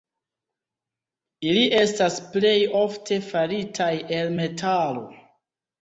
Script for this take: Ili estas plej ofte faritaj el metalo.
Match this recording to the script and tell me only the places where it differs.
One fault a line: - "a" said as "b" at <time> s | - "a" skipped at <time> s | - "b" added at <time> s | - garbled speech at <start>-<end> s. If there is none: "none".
none